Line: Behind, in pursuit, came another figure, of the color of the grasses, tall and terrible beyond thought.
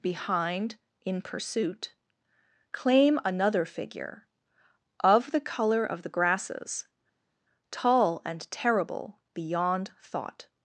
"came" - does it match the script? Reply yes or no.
no